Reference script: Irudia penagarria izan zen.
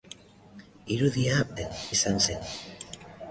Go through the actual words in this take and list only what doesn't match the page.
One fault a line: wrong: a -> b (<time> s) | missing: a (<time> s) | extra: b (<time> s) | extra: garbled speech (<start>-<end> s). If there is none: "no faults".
wrong: penagarria -> zen (1.6 s)